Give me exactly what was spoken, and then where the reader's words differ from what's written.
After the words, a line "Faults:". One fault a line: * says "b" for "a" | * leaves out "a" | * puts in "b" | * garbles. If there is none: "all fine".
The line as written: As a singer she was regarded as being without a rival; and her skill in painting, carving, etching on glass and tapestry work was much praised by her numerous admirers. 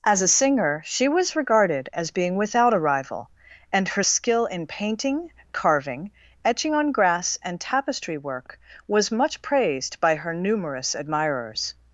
As a singer she was regarded as being without a rival; and her skill in painting, carving, etching on grass and tapestry work was much praised by her numerous admirers.
Faults:
* says "grass" for "glass"